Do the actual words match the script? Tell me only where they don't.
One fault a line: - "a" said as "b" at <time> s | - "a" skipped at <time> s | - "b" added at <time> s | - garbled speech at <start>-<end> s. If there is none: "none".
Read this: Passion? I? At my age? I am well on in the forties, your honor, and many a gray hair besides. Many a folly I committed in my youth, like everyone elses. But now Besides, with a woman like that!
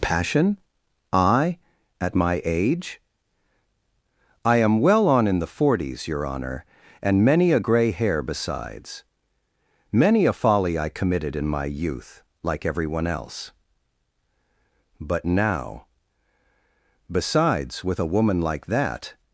- "elses" said as "else" at 13.1 s